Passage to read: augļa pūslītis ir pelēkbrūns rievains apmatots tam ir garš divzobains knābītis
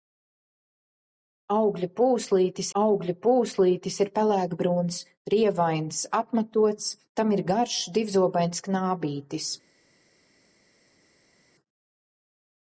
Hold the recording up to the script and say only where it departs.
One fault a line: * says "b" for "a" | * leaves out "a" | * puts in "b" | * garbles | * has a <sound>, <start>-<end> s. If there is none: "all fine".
* puts in "augļa pūslītis"